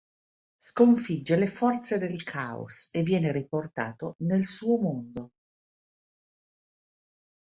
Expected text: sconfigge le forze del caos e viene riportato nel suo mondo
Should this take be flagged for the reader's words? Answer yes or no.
no